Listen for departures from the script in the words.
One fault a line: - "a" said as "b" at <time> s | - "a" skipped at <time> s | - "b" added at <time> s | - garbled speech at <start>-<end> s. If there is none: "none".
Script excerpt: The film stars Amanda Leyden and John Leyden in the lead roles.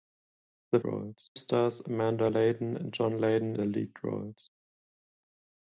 - "film" said as "roles" at 0.8 s
- "in" skipped at 3.5 s